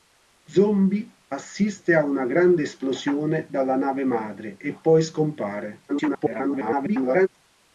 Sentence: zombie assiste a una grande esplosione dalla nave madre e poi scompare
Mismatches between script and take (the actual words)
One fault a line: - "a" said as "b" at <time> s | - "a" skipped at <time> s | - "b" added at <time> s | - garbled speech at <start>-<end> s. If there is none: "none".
- garbled speech at 5.9-7.3 s